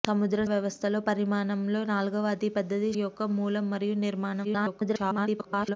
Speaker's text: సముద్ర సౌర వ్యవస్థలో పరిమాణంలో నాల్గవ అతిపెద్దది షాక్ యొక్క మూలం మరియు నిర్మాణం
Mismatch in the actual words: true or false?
true